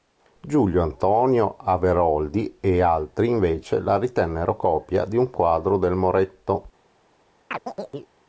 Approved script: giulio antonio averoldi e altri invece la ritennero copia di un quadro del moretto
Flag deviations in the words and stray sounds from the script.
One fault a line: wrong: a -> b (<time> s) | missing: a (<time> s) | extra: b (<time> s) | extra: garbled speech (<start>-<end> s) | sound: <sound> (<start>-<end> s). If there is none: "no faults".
sound: chirp (7.5-8.1 s)